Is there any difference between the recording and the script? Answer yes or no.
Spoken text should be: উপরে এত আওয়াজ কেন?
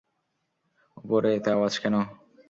no